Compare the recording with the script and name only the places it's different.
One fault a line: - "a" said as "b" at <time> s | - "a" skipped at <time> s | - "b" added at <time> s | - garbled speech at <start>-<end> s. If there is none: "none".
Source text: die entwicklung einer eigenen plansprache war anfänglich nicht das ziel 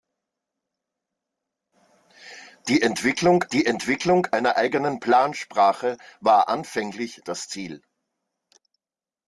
- "die entwicklung" added at 3.5 s
- "nicht" skipped at 7.2 s